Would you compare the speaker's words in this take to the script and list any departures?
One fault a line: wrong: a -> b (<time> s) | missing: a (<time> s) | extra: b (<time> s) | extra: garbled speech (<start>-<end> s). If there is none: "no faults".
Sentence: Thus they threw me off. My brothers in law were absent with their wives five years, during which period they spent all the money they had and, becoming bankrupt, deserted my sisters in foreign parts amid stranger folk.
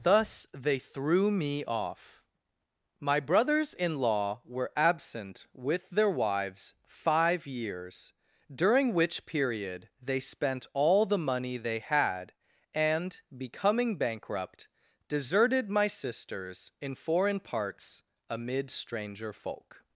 no faults